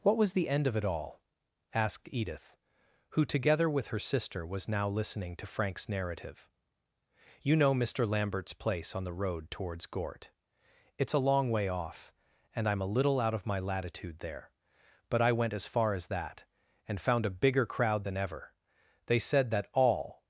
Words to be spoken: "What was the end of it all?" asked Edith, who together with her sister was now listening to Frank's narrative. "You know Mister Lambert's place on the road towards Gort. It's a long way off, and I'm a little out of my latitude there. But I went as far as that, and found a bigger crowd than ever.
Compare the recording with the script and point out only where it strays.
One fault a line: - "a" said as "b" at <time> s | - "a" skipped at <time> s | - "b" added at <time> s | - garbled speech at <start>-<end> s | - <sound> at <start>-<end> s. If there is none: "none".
- "They said that all" added at 19.1 s